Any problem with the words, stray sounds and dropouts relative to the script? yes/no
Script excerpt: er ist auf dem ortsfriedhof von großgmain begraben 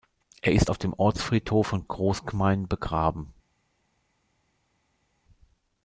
no